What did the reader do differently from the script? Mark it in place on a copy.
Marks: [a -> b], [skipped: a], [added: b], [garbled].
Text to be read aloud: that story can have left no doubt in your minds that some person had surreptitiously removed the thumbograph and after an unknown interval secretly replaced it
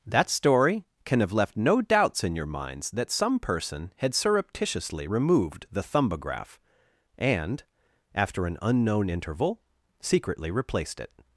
that story can have left no [doubt -> doubts] in your minds that some person had surreptitiously removed the thumbograph and after an unknown interval secretly replaced it